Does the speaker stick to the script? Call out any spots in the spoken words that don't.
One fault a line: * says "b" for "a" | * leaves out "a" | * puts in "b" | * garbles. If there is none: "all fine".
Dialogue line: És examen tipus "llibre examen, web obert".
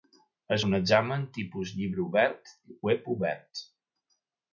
* puts in "un"
* says "obert" for "examen"